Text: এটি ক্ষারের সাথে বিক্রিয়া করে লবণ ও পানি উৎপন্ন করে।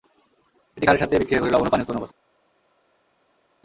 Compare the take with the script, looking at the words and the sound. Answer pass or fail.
pass